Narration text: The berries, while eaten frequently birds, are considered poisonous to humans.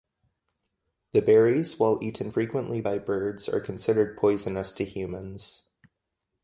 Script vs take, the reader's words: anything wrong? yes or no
yes